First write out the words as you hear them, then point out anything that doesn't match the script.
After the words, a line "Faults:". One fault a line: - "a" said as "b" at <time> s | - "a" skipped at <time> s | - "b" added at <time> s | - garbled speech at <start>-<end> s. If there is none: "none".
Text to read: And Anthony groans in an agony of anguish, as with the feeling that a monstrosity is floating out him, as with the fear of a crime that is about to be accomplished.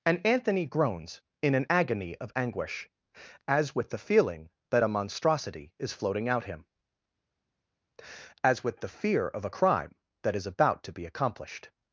And Anthony groans in an agony of anguish, as with the feeling that a monstrosity is floating out him, as with the fear of a crime that is about to be accomplished.
Faults:
none